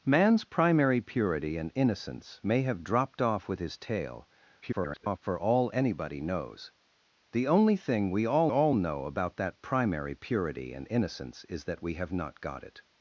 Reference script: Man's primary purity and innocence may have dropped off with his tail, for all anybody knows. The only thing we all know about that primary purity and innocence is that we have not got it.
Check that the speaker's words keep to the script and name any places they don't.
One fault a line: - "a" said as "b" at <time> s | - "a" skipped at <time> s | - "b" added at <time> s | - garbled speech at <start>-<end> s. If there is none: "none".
- garbled speech at 4.6-5.2 s
- "all" added at 8.5 s